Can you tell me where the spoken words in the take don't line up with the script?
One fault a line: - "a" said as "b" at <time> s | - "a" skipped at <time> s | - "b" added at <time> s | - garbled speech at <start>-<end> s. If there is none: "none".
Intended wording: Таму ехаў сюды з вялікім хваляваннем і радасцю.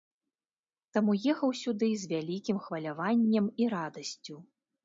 none